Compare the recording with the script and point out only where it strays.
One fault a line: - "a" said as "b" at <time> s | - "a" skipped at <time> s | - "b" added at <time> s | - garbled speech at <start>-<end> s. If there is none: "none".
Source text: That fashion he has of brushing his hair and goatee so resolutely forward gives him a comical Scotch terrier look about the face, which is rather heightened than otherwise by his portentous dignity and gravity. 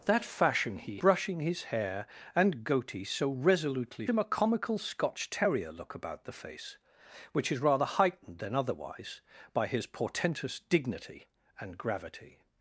- "has of" skipped at 1.0 s
- "forward gives" skipped at 4.1 s